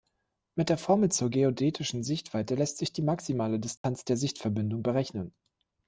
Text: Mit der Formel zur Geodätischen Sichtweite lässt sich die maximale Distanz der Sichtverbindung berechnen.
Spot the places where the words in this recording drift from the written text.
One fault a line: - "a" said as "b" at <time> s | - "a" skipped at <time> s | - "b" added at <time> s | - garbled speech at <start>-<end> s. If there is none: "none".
none